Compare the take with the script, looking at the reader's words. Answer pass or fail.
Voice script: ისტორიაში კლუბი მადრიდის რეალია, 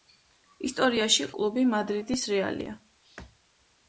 pass